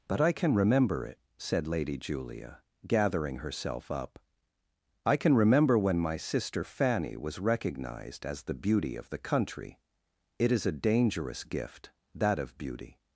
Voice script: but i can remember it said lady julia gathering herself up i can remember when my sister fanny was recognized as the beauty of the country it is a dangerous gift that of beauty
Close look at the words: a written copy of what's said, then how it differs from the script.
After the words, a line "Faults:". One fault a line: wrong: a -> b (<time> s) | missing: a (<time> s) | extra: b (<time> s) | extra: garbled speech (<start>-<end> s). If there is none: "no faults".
but i can remember it said lady julia gathering herself up i can remember when my sister fanny was recognized as the beauty of the country it is a dangerous gift that of beauty
Faults:
no faults